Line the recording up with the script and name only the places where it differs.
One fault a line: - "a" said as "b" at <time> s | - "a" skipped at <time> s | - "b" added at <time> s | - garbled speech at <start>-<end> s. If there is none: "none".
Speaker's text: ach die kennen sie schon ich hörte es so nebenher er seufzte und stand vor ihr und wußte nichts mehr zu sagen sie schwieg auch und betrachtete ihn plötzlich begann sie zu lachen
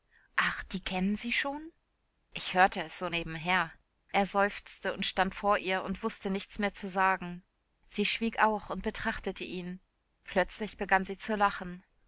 none